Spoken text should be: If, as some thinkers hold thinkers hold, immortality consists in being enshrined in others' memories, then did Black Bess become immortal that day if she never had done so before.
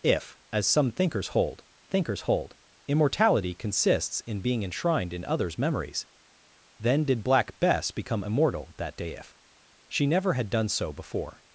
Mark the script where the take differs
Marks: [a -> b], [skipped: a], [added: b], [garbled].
If, as some thinkers hold thinkers hold, immortality consists in being enshrined in others' memories, then did Black Bess become immortal that day if she never had done so before.